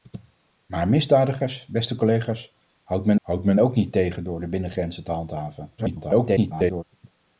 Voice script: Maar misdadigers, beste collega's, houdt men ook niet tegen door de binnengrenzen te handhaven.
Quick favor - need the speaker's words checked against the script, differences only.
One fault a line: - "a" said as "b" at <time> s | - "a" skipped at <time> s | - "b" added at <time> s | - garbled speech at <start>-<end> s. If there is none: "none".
- "houdt men" added at 3.2 s
- garbled speech at 5.8-6.8 s